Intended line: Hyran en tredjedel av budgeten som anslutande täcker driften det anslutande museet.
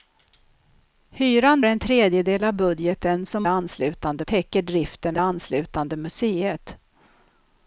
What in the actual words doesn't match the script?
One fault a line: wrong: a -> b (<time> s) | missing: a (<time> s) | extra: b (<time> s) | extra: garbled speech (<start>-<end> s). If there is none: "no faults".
no faults